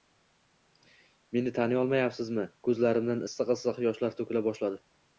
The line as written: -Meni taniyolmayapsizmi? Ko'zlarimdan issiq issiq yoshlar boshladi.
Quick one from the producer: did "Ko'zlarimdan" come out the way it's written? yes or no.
yes